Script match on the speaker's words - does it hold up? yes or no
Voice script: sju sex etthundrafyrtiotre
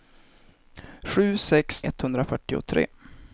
yes